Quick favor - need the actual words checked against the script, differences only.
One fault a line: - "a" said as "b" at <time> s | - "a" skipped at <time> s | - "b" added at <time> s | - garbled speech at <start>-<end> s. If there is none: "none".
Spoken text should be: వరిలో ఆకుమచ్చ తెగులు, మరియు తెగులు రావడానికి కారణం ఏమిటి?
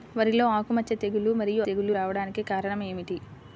none